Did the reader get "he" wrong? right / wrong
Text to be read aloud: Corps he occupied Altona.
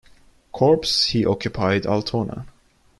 right